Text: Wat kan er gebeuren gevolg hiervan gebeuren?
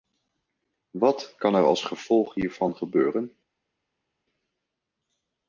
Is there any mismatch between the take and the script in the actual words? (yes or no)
yes